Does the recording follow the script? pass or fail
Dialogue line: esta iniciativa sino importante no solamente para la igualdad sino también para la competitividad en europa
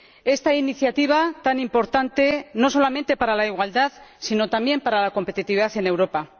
fail